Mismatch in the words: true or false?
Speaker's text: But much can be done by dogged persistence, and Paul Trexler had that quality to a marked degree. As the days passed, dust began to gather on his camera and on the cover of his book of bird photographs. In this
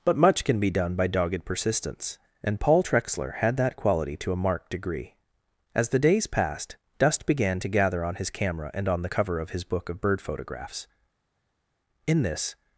false